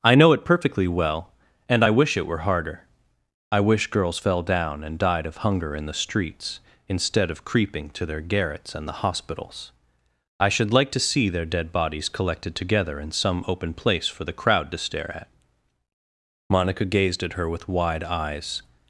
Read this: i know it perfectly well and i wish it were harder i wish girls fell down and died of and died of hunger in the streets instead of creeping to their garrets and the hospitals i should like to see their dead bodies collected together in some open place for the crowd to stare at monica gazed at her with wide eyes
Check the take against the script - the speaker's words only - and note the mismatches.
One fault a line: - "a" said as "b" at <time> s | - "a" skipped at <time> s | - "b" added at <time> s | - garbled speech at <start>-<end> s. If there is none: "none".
- "and died of" skipped at 5.4 s